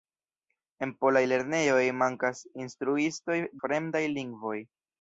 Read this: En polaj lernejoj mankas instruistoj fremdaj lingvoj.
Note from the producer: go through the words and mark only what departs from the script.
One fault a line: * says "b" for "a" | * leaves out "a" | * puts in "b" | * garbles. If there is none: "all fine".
all fine